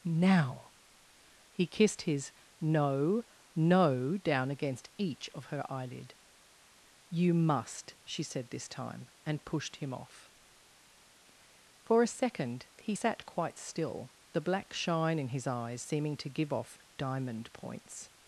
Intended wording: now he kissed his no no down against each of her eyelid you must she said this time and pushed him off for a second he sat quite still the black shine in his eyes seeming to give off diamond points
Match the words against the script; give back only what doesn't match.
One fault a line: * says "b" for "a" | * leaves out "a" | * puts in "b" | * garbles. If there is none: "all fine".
all fine